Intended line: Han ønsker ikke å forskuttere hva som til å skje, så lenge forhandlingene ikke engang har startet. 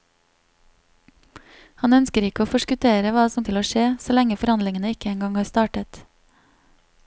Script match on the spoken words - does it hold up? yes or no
yes